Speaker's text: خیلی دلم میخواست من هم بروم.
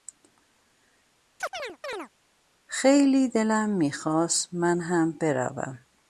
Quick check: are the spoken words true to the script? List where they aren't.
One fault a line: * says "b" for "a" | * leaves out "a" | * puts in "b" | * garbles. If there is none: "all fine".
all fine